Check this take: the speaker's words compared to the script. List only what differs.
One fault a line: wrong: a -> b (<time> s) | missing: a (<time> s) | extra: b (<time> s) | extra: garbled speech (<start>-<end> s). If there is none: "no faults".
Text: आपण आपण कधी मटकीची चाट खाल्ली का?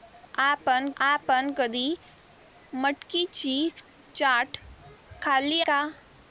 no faults